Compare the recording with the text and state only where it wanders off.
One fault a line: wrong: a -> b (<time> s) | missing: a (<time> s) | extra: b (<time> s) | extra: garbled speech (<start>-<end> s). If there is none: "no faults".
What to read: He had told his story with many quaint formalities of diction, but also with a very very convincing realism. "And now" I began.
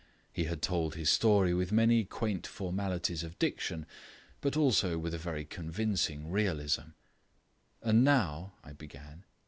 missing: very (5.5 s)